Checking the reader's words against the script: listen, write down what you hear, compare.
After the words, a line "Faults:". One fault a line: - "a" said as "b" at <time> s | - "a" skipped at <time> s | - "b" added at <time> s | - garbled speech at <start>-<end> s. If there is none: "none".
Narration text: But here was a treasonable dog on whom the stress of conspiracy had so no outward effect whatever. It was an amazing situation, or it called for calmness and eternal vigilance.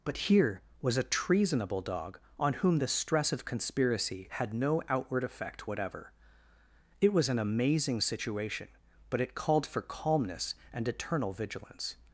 But here was a treasonable dog on whom the stress of conspiracy had no outward effect whatever. It was an amazing situation, but it called for calmness and eternal vigilance.
Faults:
- "so" skipped at 4.5 s
- "or" said as "but" at 9.1 s